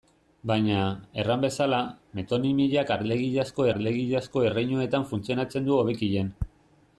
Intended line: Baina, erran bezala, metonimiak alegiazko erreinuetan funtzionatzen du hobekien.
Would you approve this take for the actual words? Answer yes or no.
no